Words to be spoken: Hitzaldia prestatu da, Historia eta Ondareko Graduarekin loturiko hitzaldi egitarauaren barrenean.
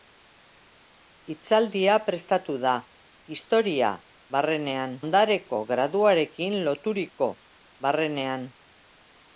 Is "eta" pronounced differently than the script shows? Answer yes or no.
yes